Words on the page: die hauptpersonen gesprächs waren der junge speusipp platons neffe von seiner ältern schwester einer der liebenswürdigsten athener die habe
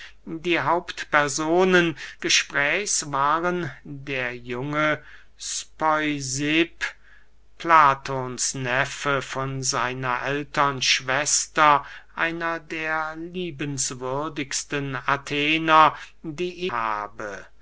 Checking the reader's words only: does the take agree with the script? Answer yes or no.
yes